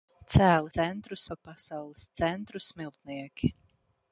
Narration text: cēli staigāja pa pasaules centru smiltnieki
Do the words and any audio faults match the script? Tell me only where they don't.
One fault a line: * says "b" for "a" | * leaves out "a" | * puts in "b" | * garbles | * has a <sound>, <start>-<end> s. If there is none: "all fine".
* says "centru" for "staigāja"